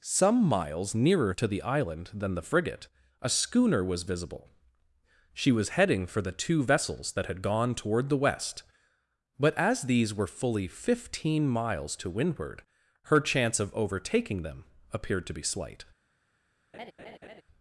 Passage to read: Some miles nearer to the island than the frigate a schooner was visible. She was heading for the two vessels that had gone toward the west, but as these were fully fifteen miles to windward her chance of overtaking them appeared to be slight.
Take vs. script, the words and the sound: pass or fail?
fail